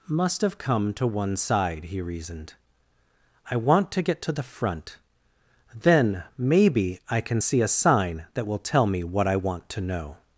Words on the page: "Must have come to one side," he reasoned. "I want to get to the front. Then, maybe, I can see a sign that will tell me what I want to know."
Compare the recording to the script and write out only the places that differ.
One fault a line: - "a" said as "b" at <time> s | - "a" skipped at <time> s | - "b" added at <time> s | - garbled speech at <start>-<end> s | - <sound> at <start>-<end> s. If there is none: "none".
none